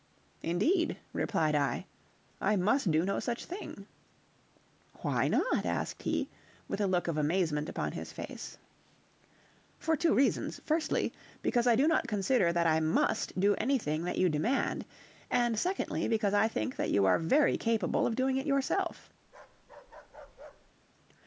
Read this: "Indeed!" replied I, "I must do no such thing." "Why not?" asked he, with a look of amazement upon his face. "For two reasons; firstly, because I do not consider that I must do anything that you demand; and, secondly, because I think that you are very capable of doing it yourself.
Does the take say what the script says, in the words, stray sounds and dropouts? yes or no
no